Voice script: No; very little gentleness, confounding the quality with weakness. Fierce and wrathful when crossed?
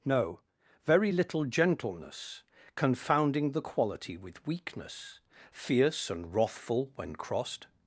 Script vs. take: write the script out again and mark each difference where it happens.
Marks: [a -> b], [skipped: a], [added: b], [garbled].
No; very little gentleness, confounding the quality with weakness. Fierce and wrathful when crossed?